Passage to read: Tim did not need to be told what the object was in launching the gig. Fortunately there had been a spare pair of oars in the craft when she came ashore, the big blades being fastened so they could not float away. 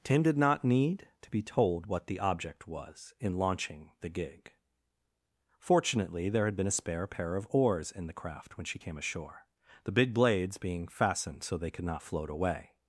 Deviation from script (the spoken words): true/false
false